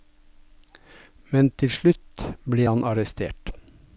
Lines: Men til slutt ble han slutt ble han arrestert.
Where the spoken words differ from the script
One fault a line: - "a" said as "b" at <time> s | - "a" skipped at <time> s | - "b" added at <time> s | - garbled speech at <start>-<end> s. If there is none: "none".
- "slutt ble han" skipped at 2.8 s